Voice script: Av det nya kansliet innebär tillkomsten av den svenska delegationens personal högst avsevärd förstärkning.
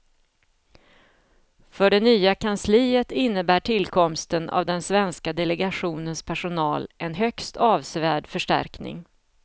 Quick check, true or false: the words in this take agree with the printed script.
false